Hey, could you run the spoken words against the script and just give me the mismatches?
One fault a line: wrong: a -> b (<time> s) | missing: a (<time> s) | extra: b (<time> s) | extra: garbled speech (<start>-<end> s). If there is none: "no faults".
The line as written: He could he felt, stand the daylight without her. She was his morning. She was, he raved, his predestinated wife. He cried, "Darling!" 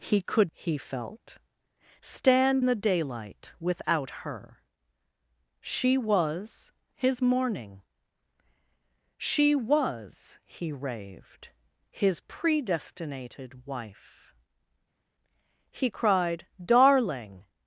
no faults